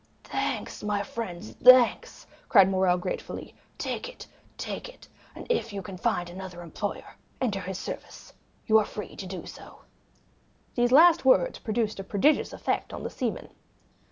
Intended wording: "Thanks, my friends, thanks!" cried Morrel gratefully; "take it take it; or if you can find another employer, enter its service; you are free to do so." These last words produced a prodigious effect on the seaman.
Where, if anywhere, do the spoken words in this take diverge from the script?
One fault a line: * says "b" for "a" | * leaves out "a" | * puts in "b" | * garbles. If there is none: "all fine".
* says "and" for "or"
* says "his" for "its"